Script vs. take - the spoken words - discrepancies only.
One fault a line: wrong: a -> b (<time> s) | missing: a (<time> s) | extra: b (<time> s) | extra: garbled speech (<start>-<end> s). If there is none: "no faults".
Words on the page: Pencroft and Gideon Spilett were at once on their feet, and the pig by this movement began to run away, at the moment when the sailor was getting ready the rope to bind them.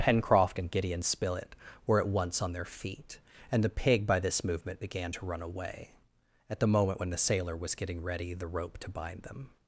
no faults